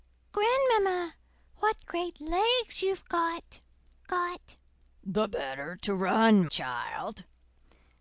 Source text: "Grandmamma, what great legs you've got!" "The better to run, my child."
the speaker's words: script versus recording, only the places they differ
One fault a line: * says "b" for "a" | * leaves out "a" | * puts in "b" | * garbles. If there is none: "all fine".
* puts in "got"
* leaves out "my"